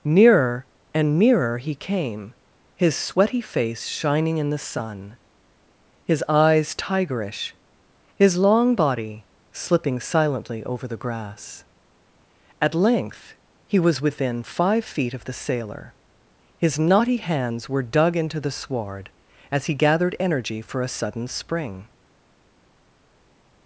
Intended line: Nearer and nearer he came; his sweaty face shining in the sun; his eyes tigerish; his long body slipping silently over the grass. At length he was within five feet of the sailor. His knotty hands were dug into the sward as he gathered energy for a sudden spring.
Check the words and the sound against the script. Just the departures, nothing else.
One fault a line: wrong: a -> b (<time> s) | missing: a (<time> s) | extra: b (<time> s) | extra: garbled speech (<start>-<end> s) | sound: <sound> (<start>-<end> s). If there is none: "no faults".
no faults